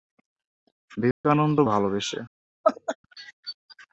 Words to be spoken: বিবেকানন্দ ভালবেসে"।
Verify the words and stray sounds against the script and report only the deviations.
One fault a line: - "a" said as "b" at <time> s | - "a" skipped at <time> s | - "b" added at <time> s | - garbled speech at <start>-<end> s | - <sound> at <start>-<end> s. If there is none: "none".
- dropout at 1.1-1.2 s
- laugh at 2.6-3.0 s